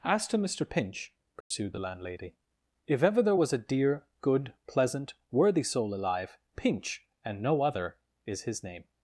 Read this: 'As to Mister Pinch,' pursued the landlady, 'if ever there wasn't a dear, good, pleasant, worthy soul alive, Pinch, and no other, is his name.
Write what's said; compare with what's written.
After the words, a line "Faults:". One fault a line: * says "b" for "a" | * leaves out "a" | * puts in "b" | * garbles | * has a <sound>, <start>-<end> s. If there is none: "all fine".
'As to Mister Pinch,' pursued the landlady, 'if ever there was a dear, good, pleasant, worthy soul alive, Pinch, and no other, is his name.
Faults:
* has a dropout, 1.4-1.5 s
* says "was" for "wasn't"